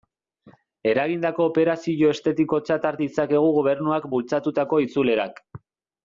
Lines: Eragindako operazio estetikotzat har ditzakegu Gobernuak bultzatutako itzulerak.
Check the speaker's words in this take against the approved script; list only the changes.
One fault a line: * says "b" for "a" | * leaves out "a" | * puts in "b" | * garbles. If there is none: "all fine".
all fine